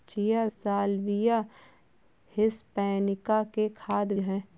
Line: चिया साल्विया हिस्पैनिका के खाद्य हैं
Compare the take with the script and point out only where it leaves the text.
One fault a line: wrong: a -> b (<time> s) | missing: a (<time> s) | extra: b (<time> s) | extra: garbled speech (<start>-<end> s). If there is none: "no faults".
no faults